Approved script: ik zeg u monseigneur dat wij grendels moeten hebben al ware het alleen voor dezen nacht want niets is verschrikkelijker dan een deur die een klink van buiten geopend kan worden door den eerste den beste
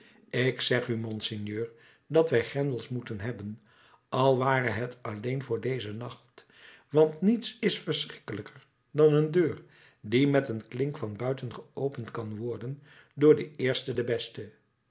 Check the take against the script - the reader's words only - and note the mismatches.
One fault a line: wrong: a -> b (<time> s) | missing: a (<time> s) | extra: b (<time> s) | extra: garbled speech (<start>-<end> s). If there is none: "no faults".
extra: met (10.3 s)